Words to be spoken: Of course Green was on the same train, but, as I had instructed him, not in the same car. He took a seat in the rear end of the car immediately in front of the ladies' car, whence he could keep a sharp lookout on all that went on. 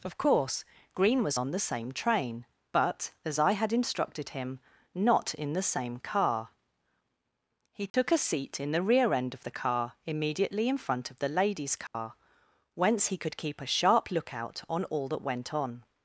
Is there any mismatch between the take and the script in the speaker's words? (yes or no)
no